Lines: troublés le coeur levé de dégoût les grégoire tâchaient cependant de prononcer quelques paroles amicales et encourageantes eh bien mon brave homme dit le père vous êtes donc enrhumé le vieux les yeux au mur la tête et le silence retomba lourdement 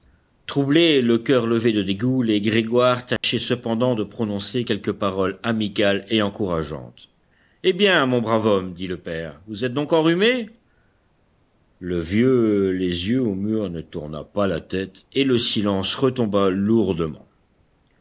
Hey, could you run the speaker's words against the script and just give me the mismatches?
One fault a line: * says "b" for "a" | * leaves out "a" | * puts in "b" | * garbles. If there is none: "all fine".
* puts in "ne tourna pas"